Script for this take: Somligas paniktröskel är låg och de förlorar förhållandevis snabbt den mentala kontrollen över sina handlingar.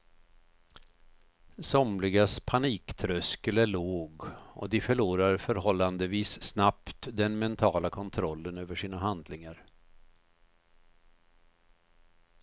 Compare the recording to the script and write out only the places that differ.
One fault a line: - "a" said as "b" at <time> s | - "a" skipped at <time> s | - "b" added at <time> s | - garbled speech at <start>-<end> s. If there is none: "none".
none